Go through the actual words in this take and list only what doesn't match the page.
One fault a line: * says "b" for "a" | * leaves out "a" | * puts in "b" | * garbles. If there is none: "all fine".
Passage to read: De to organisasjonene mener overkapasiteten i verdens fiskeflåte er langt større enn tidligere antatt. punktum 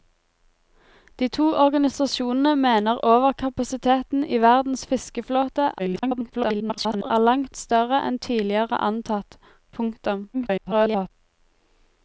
* garbles
* garbles